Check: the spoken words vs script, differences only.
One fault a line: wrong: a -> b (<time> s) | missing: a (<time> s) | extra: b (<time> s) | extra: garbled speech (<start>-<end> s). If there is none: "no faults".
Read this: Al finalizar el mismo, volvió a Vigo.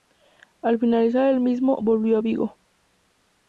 no faults